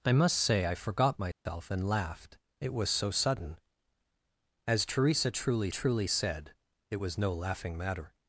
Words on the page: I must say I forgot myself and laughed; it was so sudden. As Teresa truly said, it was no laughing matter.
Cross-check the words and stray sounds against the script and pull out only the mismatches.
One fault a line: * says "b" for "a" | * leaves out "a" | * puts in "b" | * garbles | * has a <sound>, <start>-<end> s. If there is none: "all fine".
* has a dropout, 1.3-1.5 s
* puts in "truly"